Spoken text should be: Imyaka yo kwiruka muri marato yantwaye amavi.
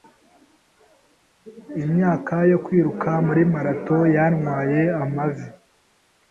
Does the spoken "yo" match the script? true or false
true